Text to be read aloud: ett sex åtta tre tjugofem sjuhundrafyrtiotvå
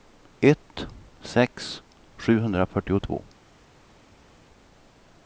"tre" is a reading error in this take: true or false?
true